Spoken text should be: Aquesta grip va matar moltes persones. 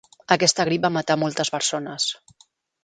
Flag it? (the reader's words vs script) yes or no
no